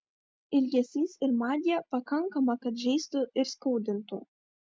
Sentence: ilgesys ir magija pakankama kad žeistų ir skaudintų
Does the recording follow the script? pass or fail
pass